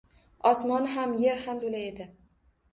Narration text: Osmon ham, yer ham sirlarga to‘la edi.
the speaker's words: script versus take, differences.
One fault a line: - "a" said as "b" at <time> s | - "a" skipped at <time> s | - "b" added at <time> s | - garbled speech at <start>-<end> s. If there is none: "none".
- "sirlarga" skipped at 1.6 s